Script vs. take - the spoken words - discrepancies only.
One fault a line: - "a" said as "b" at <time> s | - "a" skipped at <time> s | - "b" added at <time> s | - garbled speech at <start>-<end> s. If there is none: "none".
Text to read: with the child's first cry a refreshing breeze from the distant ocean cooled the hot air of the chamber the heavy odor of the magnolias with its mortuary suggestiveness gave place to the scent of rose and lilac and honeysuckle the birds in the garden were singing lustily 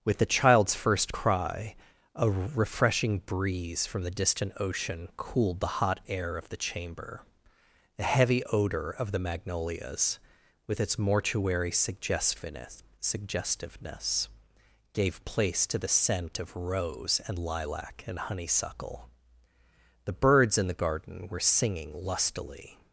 - "suggestiveness" added at 13.0 s